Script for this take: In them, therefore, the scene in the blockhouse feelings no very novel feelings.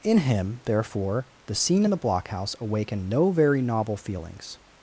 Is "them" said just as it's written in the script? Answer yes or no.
no